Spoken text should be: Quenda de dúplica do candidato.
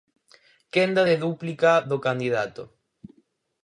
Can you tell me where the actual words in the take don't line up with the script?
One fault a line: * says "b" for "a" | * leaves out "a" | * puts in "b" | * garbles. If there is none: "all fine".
all fine